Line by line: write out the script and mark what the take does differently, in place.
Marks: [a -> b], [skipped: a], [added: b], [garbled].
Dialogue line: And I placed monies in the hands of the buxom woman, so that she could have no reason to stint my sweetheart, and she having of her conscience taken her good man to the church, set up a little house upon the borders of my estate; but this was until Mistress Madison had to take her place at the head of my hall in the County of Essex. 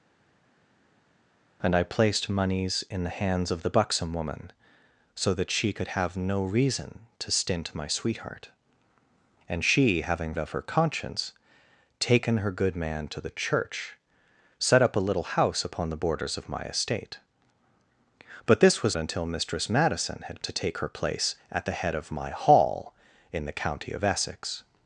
And I placed monies in the hands of the buxom woman, so that she could have no reason to stint my sweetheart, and she having of her conscience taken her good man to the church, set up a little house upon the borders of my estate; but this was until Mistress Madison had to take her place at the head of my hall in the County of Essex.